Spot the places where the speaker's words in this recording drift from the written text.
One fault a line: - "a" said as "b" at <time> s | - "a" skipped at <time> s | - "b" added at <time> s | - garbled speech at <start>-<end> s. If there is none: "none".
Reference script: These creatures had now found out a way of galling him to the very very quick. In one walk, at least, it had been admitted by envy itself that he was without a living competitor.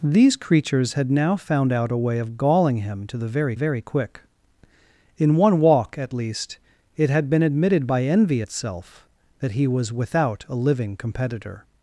none